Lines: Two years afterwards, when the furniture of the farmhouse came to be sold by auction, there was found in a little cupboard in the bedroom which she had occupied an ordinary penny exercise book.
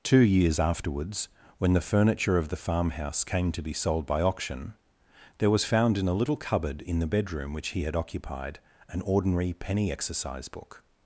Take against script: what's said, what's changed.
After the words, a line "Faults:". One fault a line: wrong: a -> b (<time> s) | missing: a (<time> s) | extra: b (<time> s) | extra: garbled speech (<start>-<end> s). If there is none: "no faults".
Two years afterwards, when the furniture of the farmhouse came to be sold by auction, there was found in a little cupboard in the bedroom which he had occupied an ordinary penny exercise book.
Faults:
wrong: she -> he (7.7 s)